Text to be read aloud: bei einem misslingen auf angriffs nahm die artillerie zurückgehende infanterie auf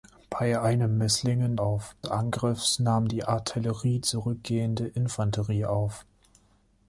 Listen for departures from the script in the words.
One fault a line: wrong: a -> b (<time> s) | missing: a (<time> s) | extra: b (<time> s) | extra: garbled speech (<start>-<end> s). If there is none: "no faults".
no faults